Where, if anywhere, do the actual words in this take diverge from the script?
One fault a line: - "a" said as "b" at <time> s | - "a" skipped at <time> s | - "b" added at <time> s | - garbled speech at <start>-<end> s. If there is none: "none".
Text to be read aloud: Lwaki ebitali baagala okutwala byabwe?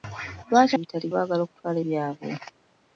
none